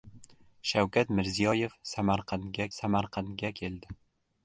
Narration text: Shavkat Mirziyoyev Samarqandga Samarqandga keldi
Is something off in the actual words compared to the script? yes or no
no